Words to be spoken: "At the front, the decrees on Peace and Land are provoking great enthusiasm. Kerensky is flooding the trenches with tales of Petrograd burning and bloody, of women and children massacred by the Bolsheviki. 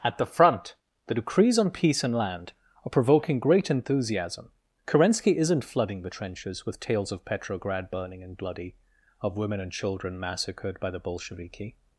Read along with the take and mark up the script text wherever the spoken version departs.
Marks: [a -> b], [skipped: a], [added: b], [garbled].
"At the front, the decrees on Peace and Land are provoking great enthusiasm. Kerensky [is -> isn't] flooding the trenches with tales of Petrograd burning and bloody, of women and children massacred by the Bolsheviki.